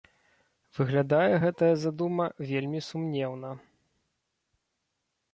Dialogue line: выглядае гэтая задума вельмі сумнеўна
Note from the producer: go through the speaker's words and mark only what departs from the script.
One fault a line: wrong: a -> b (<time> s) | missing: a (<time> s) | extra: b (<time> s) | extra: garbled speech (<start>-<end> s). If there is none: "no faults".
no faults